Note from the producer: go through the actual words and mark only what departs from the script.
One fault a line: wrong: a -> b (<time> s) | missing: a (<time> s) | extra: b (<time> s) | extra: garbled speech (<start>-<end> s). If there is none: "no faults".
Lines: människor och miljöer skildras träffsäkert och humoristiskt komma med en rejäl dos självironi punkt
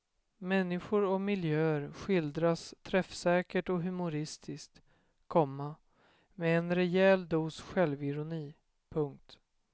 no faults